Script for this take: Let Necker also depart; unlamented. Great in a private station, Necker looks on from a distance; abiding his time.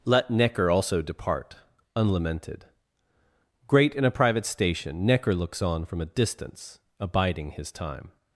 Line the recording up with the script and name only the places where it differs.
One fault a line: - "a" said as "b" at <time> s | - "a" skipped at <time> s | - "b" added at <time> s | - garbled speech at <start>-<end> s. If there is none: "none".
none